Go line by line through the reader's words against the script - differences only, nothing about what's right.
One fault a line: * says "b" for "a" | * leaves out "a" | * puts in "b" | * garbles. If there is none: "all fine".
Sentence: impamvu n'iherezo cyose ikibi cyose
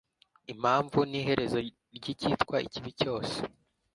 * says "ry'icyitwa" for "cyose"